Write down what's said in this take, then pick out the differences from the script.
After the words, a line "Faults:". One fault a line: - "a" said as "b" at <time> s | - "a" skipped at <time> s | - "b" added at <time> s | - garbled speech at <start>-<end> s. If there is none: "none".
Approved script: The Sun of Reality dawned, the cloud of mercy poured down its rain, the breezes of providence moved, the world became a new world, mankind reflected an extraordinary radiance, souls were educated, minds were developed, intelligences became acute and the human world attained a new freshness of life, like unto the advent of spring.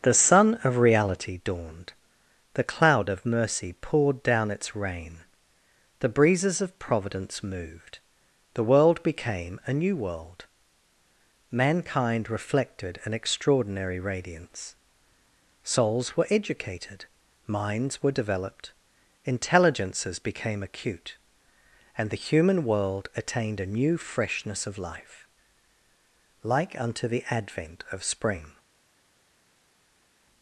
The Sun of Reality dawned, the cloud of mercy poured down its rain, the breezes of providence moved, the world became a new world, mankind reflected an extraordinary radiance, souls were educated, minds were developed, intelligences became acute and the human world attained a new freshness of life, like unto the advent of spring.
Faults:
none